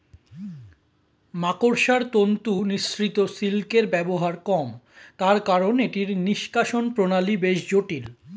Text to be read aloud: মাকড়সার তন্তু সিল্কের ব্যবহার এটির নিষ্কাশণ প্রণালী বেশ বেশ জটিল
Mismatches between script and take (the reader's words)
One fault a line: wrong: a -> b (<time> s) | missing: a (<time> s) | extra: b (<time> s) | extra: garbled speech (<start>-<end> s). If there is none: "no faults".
extra: নিঃসৃত (2.7 s)
extra: কম তার কারন (4.5 s)
missing: বেশ (7.6 s)